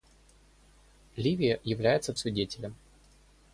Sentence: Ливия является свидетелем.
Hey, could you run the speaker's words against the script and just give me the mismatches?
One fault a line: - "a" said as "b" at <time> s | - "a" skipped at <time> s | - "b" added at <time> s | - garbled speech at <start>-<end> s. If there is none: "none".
none